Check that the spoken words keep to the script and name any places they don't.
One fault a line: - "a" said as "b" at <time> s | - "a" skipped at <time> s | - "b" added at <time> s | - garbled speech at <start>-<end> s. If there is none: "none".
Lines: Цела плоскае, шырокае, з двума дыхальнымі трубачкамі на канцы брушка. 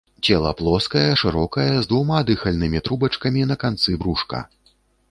none